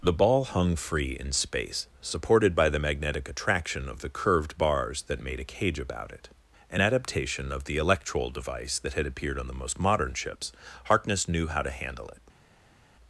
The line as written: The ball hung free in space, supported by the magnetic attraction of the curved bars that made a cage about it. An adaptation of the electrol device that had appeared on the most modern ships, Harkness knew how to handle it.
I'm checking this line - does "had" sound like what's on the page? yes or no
yes